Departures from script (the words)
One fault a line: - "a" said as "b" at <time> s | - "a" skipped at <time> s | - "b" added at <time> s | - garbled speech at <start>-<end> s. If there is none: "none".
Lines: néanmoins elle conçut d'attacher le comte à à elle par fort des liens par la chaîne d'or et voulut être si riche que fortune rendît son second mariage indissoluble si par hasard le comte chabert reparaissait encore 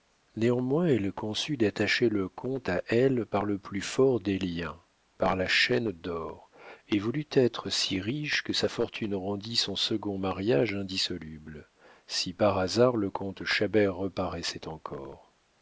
- "à" skipped at 2.8 s
- "le plus" added at 3.4 s
- "sa" added at 8.5 s